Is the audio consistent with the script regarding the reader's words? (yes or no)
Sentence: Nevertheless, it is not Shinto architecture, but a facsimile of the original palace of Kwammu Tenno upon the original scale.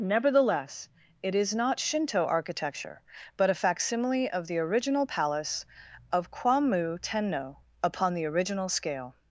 yes